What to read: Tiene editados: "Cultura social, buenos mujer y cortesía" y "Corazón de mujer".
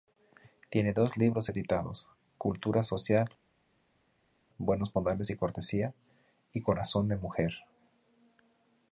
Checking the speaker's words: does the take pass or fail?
fail